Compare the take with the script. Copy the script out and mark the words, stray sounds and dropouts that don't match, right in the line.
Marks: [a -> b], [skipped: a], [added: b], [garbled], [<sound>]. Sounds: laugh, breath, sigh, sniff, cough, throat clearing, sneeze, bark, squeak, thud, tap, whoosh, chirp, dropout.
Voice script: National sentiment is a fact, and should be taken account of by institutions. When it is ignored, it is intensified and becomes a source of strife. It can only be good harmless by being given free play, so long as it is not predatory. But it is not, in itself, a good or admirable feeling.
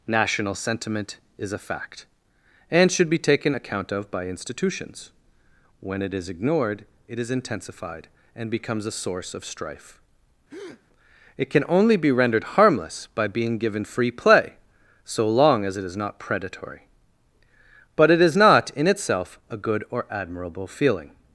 National sentiment is a fact, and should be taken account of by institutions. When it is ignored, it is intensified and becomes a source of strife. [breath] It can only be [good -> rendered] harmless by being given free play, so long as it is not predatory. But it is not, in itself, a good or admirable feeling.